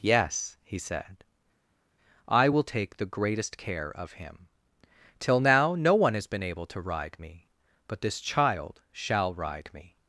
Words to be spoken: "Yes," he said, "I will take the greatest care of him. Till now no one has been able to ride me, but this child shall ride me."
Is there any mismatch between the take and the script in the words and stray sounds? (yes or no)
no